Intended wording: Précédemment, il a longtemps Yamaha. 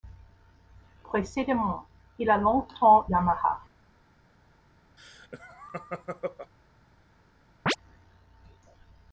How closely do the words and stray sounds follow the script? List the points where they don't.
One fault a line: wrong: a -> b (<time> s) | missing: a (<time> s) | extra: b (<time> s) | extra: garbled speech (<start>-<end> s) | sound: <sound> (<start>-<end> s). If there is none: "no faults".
sound: laugh (5.0-6.5 s)
sound: chirp (7.7-7.8 s)